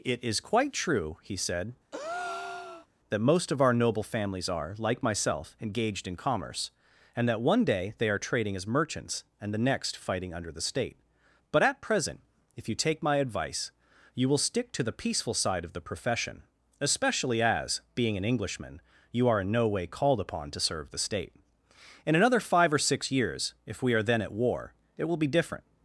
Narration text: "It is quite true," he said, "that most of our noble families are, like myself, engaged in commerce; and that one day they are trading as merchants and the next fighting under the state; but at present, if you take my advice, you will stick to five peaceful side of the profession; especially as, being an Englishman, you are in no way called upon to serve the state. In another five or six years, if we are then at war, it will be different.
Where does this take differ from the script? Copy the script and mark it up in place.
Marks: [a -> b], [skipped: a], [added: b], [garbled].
"It is quite true," he said, "that most of our noble families are, like myself, engaged in commerce; and that one day they are trading as merchants and the next fighting under the state; but at present, if you take my advice, you will stick to [five -> the] peaceful side of the profession; especially as, being an Englishman, you are in no way called upon to serve the state. In another five or six years, if we are then at war, it will be different.